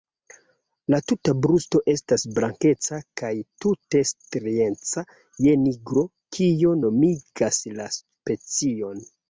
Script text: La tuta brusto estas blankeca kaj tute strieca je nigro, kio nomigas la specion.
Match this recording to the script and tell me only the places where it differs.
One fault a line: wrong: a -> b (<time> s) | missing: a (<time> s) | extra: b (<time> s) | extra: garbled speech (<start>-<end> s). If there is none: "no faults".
no faults